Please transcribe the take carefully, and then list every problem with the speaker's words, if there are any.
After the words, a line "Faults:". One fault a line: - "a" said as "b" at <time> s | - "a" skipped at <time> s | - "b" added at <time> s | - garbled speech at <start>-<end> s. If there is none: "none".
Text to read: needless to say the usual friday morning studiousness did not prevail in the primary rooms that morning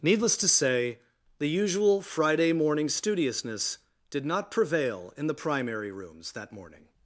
needless to say the usual friday morning studiousness did not prevail in the primary rooms that morning
Faults:
none